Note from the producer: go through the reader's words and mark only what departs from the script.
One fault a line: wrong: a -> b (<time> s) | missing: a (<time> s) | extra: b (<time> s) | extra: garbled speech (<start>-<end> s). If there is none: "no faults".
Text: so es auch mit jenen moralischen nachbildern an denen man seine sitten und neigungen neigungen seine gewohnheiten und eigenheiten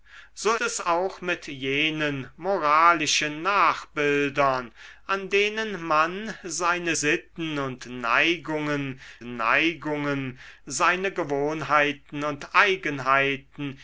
no faults